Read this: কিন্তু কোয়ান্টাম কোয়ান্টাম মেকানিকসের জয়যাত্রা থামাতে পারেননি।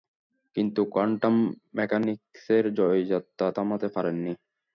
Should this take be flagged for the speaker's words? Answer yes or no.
yes